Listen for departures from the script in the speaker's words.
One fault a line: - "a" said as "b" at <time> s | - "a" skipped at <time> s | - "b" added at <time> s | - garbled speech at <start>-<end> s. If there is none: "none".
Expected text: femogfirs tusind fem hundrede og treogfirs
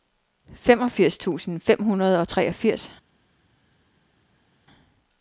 none